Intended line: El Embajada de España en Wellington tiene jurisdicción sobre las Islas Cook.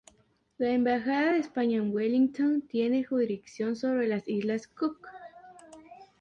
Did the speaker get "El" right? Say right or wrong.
wrong